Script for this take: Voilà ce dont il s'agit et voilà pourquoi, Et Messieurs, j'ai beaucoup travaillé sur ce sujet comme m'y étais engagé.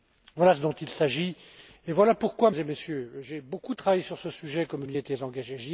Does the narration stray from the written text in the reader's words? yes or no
no